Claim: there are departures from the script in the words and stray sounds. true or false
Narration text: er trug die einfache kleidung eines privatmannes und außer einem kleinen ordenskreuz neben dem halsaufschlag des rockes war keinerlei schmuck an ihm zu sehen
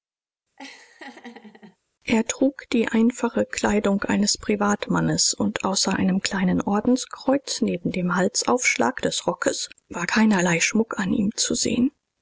true